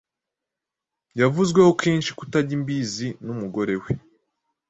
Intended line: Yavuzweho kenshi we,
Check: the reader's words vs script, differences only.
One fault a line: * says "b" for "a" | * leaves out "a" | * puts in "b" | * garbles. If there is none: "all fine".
* puts in "kutajya imbizi n'umugore"